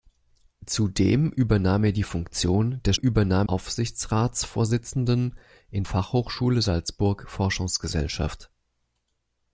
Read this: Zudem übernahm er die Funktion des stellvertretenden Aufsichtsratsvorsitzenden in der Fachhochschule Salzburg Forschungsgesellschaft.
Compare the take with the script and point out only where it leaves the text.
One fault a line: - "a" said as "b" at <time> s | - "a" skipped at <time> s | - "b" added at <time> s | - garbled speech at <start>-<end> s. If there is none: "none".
- "stellvertretenden" said as "übernahm" at 2.9 s
- "der" skipped at 5.8 s